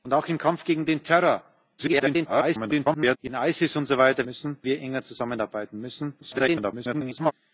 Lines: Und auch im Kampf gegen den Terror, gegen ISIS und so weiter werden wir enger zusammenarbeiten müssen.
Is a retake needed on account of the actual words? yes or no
yes